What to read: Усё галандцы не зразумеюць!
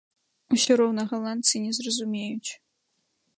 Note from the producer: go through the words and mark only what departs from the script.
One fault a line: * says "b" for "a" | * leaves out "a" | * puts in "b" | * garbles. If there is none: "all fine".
* puts in "роўна"